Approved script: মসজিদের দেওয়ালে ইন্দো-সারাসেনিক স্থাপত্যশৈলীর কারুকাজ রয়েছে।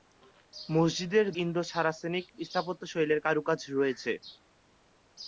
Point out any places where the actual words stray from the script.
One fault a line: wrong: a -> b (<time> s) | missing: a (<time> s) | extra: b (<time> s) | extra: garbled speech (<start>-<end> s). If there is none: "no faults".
missing: দেওয়ালে (1.2 s)